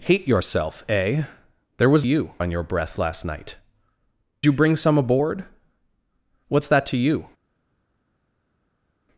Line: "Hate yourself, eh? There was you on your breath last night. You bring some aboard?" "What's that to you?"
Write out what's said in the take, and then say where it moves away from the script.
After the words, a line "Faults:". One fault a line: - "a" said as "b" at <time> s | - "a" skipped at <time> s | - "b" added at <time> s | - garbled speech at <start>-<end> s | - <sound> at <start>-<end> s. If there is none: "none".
"Hate yourself, eh? There was you on your breath last night. You bring some aboard?" "What's that to you?"
Faults:
none